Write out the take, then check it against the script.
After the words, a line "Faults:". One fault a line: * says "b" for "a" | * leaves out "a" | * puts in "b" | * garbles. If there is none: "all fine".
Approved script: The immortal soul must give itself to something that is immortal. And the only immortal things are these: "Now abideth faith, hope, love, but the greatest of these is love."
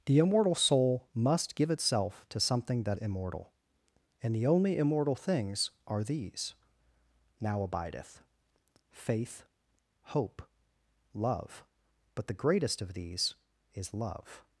The immortal soul must give itself to something that immortal. And the only immortal things are these: "Now abideth faith, hope, love, but the greatest of these is love."
Faults:
* leaves out "is"